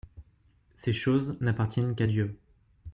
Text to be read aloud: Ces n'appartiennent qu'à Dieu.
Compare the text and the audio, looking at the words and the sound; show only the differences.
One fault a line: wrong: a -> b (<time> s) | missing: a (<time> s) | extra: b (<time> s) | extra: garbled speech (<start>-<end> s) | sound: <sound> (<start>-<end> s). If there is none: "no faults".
extra: choses (0.9 s)